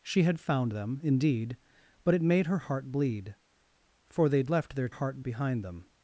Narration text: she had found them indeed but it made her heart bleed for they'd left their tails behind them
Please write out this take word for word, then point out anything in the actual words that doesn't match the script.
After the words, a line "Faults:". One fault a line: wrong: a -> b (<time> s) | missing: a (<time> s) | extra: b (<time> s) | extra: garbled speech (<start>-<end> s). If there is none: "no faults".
she had found them indeed but it made her heart bleed for they'd left their heart behind them
Faults:
wrong: tails -> heart (4.9 s)